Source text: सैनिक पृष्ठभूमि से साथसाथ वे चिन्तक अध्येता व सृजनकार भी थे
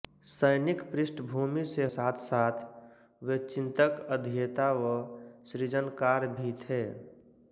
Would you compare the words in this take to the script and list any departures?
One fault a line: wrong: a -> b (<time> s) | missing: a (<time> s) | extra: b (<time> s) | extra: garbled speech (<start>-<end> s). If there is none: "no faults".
no faults